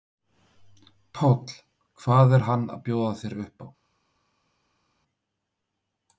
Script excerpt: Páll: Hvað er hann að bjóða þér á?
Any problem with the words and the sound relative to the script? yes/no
yes